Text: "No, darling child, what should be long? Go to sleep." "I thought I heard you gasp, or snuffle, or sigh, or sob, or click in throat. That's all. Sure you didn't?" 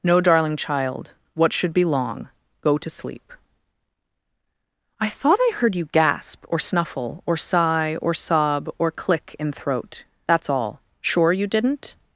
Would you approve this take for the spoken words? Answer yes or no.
yes